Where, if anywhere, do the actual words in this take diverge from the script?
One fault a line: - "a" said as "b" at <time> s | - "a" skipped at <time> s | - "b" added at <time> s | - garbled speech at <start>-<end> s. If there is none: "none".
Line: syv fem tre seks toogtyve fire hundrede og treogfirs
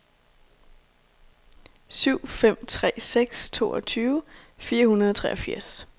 none